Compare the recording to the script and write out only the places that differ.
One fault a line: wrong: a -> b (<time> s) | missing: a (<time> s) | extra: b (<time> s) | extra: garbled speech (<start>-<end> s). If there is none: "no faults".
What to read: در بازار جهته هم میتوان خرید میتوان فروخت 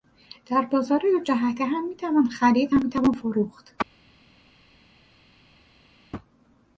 extra: دو (1.0 s)
extra: هم (2.7 s)